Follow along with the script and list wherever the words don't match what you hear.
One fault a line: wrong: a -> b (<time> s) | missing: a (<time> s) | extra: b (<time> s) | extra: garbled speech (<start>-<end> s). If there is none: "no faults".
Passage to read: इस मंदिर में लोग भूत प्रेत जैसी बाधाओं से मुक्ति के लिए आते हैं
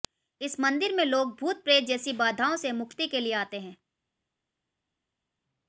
no faults